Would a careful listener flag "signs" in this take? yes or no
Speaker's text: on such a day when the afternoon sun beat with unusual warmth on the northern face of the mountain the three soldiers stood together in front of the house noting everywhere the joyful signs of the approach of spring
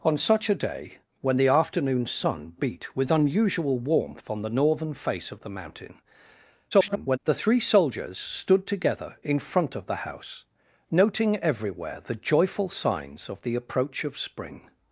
no